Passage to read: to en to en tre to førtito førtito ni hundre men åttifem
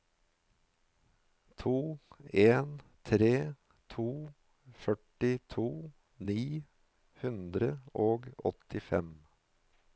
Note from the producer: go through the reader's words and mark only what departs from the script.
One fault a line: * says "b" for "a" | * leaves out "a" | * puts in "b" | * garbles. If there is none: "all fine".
* leaves out "to en"
* leaves out "førtito"
* says "og" for "men"